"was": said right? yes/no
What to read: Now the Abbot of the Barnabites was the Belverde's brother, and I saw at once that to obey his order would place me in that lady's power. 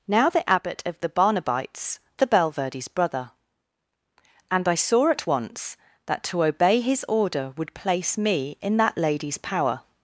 no